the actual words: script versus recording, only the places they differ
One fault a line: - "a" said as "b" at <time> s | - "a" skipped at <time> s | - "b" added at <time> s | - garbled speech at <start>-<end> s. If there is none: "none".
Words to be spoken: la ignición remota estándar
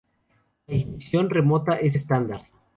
- "es" added at 1.8 s